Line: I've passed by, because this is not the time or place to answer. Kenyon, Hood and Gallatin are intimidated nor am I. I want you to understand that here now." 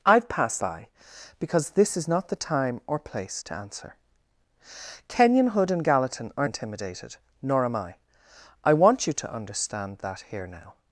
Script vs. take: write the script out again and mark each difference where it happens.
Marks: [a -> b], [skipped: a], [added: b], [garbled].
I've passed by, because this is not the time or place to answer. Kenyon, Hood and Gallatin are intimidated nor am I. I want you to understand that here now."